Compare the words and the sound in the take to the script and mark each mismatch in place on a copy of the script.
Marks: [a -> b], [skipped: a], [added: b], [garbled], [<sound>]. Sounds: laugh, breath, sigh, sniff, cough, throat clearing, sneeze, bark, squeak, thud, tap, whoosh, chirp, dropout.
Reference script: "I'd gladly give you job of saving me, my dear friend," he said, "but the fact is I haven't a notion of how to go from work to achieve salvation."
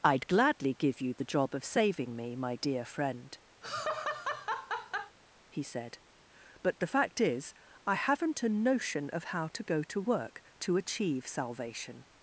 "I'd gladly give you [added: the] job of saving me, my dear friend," [laugh] he said, "but the fact is I haven't a notion of how to go [from -> to] work to achieve salvation."